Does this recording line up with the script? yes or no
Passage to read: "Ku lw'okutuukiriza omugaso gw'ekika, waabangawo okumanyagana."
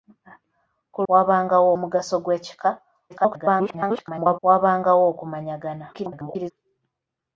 no